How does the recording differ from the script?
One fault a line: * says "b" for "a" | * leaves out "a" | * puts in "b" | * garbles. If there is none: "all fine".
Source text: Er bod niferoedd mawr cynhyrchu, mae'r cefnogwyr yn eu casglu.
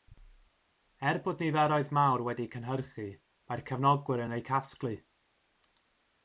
* puts in "wedi'u"